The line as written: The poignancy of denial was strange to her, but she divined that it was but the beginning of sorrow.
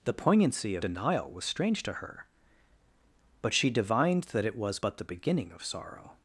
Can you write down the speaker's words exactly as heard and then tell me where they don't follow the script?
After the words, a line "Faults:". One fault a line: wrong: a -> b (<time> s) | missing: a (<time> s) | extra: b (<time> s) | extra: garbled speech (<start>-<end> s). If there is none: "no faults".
The poignancy of denial was strange to her, but she divined that it was but the beginning of sorrow.
Faults:
no faults